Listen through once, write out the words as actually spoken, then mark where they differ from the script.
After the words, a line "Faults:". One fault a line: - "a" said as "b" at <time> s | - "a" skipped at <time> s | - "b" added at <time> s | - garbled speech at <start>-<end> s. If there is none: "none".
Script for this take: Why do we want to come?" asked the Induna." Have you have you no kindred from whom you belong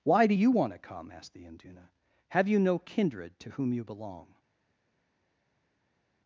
Why do you want to come?" asked the Induna." Have you no kindred to whom you belong
Faults:
- "we" said as "you" at 0.3 s
- "have you" skipped at 2.6 s
- "from" said as "to" at 3.4 s